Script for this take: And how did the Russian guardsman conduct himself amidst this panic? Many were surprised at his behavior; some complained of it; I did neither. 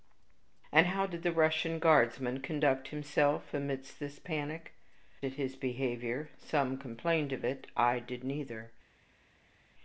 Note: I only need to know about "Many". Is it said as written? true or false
false